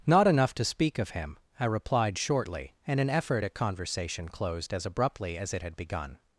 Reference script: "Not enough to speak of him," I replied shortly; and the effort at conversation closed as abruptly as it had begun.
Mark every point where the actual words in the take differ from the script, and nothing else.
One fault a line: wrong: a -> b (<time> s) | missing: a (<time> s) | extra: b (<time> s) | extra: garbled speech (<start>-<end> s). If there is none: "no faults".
wrong: the -> an (3.0 s)